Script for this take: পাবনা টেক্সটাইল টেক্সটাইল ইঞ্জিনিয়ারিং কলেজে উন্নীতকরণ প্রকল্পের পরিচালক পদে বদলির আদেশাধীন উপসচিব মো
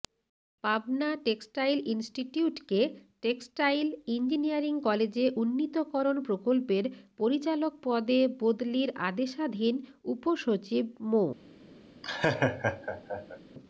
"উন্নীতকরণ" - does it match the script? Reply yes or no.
yes